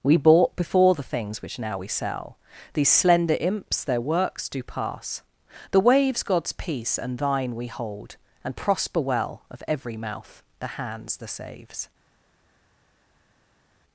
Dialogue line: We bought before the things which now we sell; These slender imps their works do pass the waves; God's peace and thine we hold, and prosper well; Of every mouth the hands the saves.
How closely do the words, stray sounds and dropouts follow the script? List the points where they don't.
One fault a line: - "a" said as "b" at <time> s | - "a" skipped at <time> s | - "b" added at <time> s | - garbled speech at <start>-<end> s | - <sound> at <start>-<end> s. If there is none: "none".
none